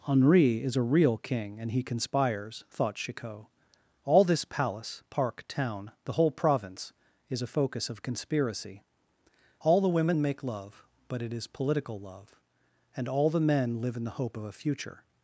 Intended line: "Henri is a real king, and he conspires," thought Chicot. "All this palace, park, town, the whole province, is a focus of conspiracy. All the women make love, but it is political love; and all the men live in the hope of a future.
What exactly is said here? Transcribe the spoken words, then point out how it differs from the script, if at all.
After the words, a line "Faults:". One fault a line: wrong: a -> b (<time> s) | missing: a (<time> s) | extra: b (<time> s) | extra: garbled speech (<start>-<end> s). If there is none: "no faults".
"Henri is a real king, and he conspires," thought Chicot. "All this palace, park, town, the whole province, is a focus of conspiracy. All the women make love, but it is political love; and all the men live in the hope of a future.
Faults:
no faults